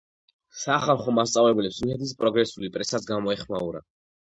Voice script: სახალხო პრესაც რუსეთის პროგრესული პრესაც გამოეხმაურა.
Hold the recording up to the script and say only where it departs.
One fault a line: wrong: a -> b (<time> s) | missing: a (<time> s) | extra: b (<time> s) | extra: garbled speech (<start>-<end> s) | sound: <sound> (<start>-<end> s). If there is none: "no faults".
wrong: პრესაც -> მასწავლებლებს (1.2 s)